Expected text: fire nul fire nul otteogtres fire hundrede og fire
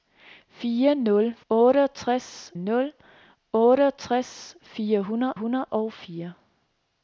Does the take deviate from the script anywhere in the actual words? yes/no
yes